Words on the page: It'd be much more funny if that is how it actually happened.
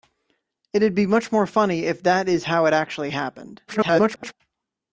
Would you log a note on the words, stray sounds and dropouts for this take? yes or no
yes